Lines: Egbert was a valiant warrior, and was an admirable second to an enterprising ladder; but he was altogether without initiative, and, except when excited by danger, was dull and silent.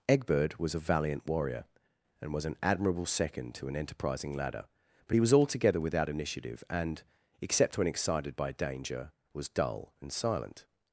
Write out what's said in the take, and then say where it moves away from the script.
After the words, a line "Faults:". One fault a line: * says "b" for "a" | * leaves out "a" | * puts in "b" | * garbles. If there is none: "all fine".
Egbert was a valiant warrior, and was an admirable second to an enterprising ladder; but he was altogether without initiative, and, except when excited by danger, was dull and silent.
Faults:
all fine